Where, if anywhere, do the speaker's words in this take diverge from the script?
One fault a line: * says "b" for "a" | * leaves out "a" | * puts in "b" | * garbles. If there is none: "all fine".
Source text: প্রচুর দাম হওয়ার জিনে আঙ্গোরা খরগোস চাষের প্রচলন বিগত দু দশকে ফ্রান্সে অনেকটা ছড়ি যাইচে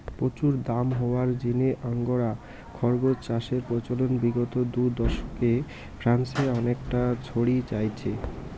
all fine